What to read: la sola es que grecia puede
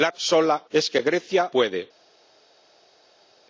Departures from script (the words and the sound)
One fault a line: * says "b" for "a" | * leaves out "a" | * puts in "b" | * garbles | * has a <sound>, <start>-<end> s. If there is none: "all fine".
all fine